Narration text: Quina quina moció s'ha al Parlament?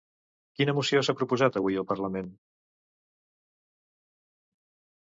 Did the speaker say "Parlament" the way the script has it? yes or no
yes